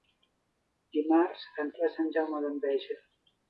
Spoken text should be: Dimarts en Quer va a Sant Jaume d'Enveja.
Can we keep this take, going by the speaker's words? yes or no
no